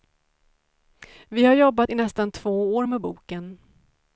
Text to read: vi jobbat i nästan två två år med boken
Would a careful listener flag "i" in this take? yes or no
no